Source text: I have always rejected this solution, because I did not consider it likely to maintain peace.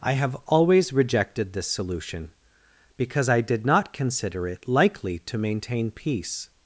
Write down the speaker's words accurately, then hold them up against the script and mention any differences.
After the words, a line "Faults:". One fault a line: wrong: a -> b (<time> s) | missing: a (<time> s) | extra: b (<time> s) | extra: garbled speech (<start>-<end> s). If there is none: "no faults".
I have always rejected this solution, because I did not consider it likely to maintain peace.
Faults:
no faults